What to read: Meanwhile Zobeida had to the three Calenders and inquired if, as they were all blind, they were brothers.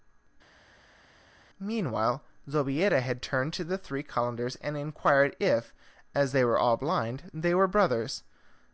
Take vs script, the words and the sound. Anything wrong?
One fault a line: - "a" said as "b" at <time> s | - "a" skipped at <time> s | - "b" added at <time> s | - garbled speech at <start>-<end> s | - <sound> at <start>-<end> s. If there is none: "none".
- "turned" added at 3.2 s